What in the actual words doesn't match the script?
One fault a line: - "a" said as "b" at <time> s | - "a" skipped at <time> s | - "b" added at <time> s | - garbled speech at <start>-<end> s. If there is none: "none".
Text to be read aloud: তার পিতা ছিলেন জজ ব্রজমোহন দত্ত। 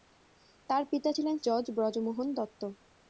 none